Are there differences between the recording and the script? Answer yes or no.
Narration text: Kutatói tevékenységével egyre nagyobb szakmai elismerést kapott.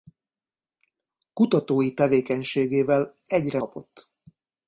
yes